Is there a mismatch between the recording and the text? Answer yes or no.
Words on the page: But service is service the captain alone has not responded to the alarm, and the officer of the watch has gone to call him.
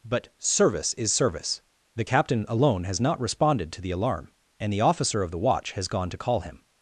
no